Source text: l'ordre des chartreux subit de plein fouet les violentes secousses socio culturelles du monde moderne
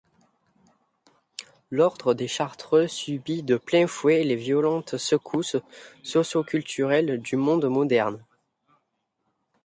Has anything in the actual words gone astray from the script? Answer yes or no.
no